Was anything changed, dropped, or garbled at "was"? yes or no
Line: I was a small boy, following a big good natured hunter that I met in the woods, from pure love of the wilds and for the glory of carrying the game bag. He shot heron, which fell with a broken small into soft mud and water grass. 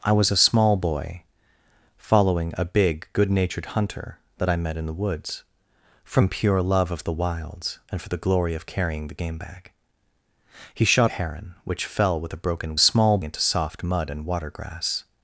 no